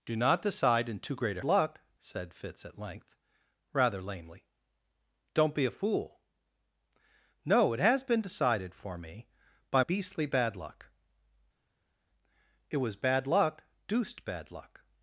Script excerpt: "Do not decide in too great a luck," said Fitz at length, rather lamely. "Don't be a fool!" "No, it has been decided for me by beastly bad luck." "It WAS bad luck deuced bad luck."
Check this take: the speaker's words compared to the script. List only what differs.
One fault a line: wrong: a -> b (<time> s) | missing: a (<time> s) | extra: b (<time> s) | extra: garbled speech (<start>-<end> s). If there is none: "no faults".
no faults